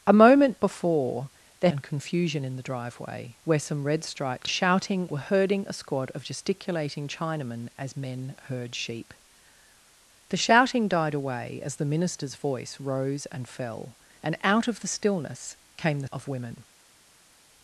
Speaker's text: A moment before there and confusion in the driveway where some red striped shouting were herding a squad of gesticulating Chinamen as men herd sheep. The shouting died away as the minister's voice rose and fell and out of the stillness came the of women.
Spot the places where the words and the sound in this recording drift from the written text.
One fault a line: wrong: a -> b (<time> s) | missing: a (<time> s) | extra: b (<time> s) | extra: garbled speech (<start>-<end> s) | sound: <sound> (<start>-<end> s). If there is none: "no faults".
no faults